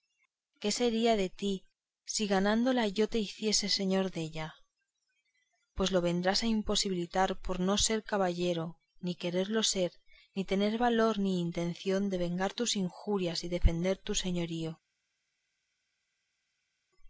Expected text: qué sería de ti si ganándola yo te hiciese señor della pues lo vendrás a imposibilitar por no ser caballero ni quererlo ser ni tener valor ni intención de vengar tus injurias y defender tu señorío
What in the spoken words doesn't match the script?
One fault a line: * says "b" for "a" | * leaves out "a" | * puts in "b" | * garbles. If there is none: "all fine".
all fine